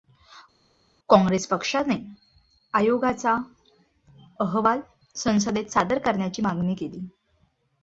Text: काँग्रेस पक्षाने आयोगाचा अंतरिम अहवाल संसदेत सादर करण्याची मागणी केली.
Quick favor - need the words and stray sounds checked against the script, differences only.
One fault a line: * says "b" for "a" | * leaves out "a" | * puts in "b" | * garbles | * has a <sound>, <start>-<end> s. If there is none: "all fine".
* leaves out "अंतरिम"